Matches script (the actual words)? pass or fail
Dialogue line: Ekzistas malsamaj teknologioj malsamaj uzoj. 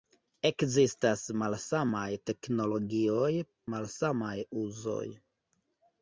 pass